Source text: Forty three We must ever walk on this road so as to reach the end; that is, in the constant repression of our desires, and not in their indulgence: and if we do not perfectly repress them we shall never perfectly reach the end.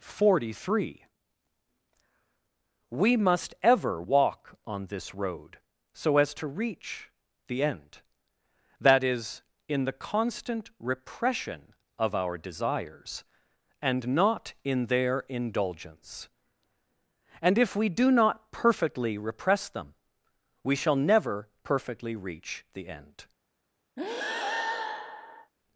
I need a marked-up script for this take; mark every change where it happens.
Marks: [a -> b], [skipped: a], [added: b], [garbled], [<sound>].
Forty three We must ever walk on this road so as to reach the end; that is, in the constant repression of our desires, and not in their indulgence: and if we do not perfectly repress them we shall never perfectly reach the end. [breath]